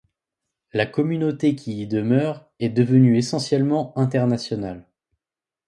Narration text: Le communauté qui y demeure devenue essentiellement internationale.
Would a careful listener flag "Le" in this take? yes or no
yes